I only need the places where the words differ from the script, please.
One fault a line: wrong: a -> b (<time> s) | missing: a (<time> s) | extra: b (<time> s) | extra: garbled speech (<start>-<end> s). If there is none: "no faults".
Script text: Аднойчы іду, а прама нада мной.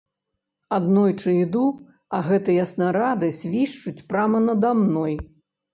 extra: гэтыя снарады свішчуць (2.3 s)